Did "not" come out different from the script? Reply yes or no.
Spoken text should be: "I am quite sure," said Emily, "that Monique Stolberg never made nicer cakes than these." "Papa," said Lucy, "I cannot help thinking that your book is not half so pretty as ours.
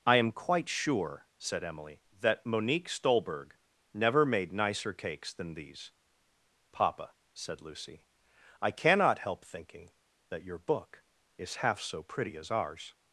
yes